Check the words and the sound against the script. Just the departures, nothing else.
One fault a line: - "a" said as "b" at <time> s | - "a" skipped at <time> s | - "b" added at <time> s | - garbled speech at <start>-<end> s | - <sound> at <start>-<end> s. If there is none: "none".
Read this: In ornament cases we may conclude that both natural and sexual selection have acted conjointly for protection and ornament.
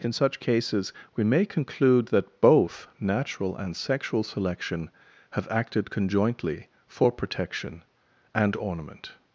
- "ornament" said as "such" at 0.1 s